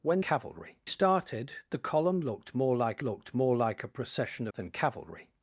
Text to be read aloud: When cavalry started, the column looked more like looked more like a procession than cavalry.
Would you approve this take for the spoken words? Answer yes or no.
yes